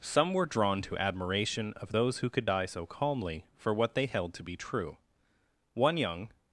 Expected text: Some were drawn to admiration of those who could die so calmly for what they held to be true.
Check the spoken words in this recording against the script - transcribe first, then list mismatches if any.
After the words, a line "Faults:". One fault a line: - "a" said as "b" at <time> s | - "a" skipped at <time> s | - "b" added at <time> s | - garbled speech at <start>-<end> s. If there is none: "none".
Some were drawn to admiration of those who could die so calmly for what they held to be true. One young
Faults:
- "One young" added at 5.7 s